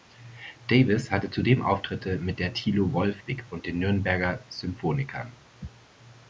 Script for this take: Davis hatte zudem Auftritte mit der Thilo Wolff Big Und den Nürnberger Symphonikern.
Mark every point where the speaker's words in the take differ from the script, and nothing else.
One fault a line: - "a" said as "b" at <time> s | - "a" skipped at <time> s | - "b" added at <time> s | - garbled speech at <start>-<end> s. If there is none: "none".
none